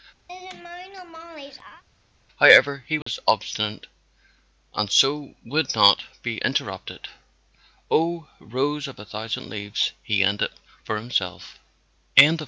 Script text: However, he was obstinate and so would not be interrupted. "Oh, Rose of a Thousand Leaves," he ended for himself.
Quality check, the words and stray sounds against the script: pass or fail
fail